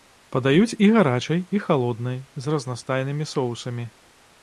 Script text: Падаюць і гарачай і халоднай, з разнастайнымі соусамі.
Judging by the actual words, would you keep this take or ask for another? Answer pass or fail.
pass